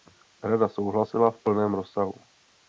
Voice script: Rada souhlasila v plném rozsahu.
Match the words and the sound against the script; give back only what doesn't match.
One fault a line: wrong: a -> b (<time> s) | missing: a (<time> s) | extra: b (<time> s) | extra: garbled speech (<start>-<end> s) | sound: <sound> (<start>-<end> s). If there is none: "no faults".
no faults